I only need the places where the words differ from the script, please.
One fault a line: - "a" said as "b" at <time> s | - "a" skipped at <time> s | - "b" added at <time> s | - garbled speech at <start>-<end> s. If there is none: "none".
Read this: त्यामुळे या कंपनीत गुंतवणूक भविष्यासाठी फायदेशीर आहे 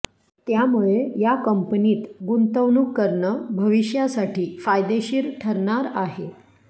- "करणं" added at 3.0 s
- "ठरणार" added at 5.4 s